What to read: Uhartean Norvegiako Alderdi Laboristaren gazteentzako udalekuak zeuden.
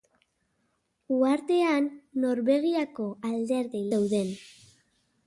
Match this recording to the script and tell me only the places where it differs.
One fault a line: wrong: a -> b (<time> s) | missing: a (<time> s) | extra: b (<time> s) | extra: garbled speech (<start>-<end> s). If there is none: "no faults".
missing: Laboristaren gazteentzako udalekuak (3.8 s)